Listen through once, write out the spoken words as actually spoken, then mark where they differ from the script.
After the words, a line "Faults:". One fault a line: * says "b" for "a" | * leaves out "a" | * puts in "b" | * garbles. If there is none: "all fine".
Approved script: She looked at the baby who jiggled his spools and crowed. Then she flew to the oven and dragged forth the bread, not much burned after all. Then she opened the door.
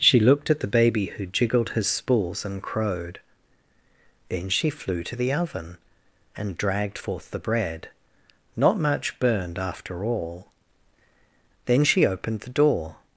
She looked at the baby who jiggled his spools and crowed. Then she flew to the oven and dragged forth the bread, not much burned after all. Then she opened the door.
Faults:
all fine